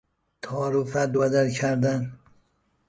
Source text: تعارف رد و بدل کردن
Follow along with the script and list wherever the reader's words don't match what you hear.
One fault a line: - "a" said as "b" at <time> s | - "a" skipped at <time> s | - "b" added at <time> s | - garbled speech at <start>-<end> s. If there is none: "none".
none